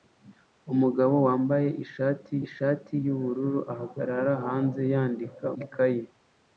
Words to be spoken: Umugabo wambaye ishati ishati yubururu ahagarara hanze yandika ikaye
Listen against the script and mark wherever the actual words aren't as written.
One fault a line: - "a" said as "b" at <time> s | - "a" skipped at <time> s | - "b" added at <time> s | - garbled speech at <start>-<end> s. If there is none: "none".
none